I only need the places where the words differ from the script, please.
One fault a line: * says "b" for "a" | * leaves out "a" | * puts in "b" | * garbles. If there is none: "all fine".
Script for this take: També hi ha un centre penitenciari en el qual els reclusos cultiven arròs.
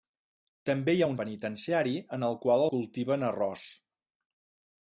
* leaves out "centre"
* leaves out "els reclusos"